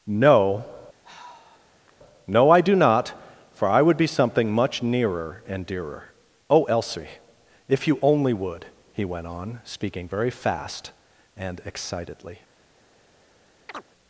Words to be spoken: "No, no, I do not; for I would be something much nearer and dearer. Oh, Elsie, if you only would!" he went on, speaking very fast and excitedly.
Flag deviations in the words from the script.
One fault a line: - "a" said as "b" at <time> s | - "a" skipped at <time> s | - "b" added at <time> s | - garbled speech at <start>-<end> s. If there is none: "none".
none